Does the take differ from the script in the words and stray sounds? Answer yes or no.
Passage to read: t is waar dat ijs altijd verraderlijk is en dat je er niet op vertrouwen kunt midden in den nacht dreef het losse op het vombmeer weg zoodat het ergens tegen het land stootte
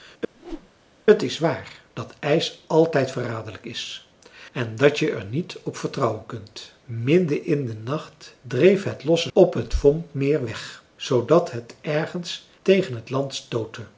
yes